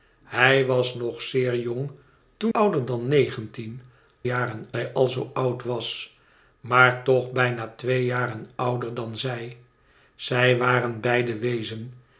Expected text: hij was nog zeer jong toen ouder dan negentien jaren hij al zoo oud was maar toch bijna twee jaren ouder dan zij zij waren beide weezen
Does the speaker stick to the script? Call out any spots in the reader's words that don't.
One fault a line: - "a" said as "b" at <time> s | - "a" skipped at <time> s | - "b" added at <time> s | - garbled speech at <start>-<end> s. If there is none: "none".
none